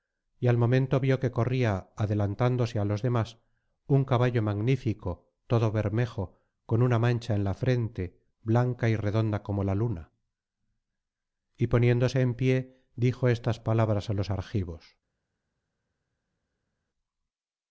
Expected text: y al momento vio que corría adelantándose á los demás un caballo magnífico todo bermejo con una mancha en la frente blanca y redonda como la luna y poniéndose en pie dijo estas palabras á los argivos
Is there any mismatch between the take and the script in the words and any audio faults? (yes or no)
no